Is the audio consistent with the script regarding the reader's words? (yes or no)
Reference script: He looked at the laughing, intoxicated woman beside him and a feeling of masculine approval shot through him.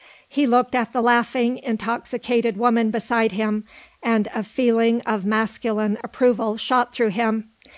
yes